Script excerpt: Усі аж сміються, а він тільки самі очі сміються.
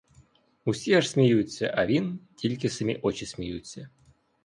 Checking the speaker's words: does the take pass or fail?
pass